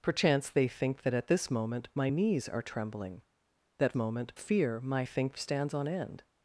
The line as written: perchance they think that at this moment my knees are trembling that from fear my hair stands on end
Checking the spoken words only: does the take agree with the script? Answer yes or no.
no